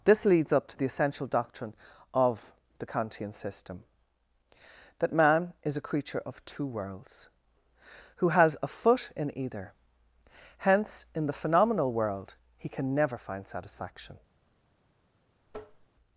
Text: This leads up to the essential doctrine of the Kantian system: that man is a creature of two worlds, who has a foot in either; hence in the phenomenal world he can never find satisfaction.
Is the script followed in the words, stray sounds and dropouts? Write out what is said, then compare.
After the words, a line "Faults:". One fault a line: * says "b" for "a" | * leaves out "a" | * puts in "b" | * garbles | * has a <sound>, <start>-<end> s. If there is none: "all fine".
This leads up to the essential doctrine of the Kantian system: that man is a creature of two worlds, who has a foot in either; hence in the phenomenal world he can never find satisfaction.
Faults:
* has a tap, 15.5-15.9 s